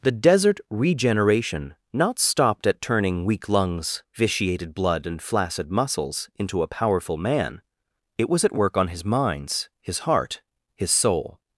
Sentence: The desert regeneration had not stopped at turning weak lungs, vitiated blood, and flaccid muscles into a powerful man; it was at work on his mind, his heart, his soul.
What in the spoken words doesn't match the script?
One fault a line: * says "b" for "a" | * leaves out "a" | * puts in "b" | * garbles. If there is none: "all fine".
* leaves out "had"
* says "minds" for "mind"